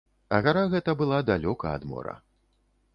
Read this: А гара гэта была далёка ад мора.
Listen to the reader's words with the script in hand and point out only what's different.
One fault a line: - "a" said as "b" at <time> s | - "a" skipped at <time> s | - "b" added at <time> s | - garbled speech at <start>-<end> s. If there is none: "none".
none